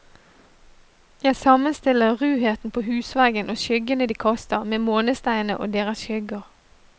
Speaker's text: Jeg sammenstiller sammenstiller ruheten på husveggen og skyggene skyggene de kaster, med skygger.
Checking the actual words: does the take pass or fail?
fail